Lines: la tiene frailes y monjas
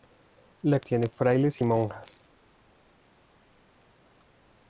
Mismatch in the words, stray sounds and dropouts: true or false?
false